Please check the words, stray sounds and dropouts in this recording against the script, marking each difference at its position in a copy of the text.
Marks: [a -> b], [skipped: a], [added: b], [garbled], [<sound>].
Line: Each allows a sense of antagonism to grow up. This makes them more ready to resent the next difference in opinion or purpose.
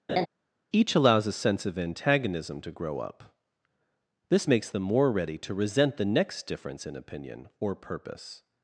[laugh] Each allows a sense of antagonism to grow up. This makes them more ready to resent the next difference in opinion or purpose.